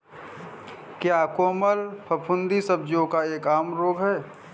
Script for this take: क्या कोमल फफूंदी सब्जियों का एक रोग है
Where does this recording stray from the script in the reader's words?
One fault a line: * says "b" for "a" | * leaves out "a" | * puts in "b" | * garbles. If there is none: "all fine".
* puts in "आम"